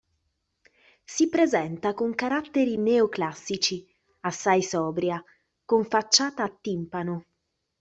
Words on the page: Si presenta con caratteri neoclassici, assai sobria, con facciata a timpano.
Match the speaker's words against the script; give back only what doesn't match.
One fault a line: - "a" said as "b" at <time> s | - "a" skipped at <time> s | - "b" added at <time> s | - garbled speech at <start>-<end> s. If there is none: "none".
none